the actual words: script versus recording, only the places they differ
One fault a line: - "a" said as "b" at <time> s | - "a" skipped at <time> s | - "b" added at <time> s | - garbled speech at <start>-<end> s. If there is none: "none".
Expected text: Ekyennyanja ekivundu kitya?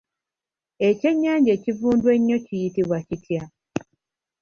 - "ennyo kiyitibwa" added at 2.1 s